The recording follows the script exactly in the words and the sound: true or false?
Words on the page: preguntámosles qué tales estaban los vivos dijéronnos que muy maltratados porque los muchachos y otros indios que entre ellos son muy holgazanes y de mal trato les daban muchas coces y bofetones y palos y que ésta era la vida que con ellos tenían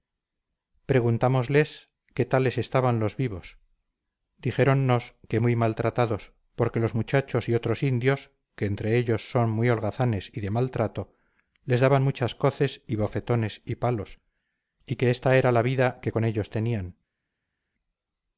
true